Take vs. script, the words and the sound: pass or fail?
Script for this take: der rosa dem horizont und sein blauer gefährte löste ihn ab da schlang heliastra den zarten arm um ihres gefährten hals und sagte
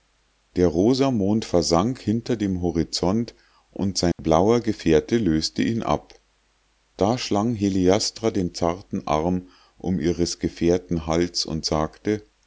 fail